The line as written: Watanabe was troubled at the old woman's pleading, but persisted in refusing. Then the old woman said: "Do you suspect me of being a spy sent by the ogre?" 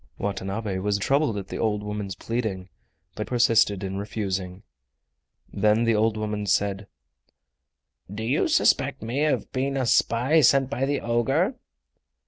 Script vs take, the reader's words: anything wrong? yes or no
no